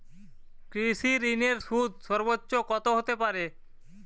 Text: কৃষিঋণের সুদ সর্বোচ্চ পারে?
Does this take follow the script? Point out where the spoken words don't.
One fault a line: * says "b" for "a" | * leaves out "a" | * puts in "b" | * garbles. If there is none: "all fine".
* puts in "কত হতে"